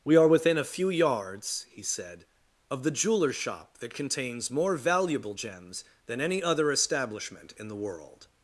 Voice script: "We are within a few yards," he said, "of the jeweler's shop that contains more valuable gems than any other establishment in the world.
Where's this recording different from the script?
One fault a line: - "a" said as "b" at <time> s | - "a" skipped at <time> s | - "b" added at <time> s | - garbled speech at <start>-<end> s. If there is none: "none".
none